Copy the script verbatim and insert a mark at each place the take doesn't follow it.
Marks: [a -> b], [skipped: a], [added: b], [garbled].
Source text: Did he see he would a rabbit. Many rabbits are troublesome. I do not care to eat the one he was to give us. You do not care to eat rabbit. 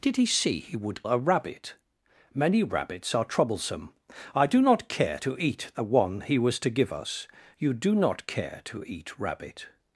Did he see he would a rabbit. Many rabbits are troublesome. I do not care to eat the one he was to give us. You do not care to eat rabbit.